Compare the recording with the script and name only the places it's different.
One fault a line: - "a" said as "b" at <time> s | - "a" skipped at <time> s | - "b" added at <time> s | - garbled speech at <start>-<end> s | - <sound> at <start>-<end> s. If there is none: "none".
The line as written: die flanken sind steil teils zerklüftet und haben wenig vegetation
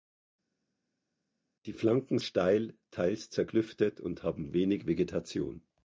- "sind" skipped at 2.2 s